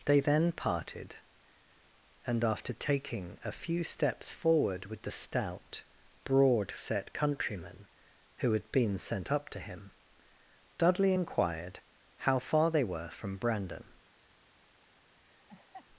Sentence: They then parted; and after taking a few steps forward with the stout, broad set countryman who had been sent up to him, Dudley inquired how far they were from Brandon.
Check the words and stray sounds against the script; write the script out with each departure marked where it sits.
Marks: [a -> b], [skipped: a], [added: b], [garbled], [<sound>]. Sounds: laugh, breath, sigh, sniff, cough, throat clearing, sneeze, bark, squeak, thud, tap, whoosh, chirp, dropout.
They then parted; and after taking a few steps forward with the stout, broad set countryman who had been sent up to him, Dudley inquired how far they were from Brandon. [laugh]